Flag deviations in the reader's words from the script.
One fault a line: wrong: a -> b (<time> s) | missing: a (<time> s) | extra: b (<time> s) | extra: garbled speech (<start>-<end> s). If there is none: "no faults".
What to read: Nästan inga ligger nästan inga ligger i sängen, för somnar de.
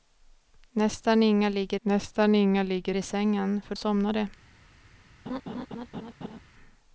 no faults